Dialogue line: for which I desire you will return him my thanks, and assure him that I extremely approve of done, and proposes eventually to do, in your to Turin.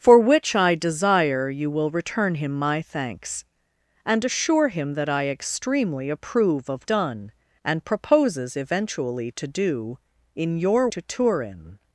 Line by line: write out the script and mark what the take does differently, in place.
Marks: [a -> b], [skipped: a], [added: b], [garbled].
for which I desire you will return him my thanks, and assure him that I extremely approve of done, and proposes eventually to do, in your to Turin.